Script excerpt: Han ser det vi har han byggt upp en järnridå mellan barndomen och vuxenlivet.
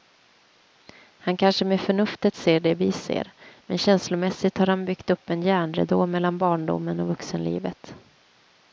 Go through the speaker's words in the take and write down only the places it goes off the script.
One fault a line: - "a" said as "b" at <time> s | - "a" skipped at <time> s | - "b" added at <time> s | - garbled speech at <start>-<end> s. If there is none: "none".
- "kanske med förnuftet" added at 1.4 s
- "ser men känslomässigt" added at 2.9 s